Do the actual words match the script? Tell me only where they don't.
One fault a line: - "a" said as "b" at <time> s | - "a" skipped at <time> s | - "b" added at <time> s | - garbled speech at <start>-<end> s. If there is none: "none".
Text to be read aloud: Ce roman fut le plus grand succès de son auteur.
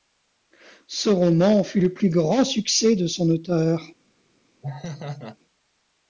none